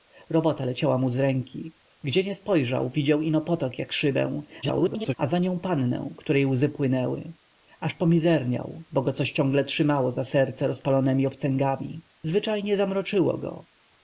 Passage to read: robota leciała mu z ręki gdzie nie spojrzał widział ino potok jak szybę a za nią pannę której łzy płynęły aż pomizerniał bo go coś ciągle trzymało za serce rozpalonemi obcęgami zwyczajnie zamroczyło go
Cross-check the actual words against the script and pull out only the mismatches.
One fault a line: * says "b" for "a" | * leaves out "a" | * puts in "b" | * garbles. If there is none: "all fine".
* garbles